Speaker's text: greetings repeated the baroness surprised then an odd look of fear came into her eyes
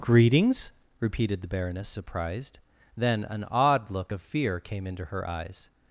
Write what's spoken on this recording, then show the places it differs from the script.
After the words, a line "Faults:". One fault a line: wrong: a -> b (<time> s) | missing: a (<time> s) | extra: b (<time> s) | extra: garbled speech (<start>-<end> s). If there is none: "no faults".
greetings repeated the baroness surprised then an odd look of fear came into her eyes
Faults:
no faults